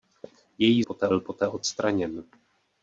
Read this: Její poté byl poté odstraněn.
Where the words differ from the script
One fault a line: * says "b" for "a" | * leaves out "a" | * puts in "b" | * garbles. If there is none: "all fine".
all fine